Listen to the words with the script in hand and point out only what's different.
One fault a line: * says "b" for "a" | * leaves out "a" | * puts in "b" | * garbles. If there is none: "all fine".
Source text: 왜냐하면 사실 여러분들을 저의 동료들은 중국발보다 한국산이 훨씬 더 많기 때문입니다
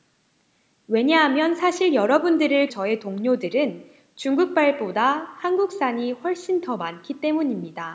all fine